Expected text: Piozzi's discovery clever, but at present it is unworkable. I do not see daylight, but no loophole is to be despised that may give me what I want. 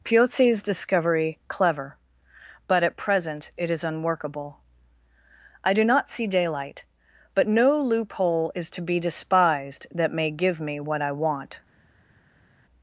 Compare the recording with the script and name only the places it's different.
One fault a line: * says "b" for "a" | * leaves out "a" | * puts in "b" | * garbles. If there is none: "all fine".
all fine